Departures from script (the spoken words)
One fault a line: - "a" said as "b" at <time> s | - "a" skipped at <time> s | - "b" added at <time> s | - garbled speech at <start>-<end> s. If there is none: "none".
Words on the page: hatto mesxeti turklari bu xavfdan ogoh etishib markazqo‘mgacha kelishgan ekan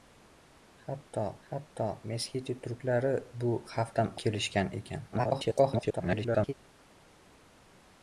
- "hatto" added at 1.5 s
- "ogoh etishib markazqo‘mgacha" skipped at 4.1 s
- garbled speech at 5.1-6.5 s